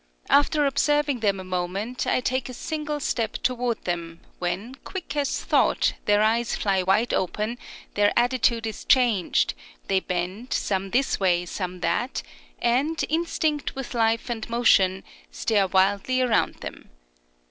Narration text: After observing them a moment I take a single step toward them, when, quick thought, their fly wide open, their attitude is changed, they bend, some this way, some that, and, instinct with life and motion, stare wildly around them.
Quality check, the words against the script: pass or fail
fail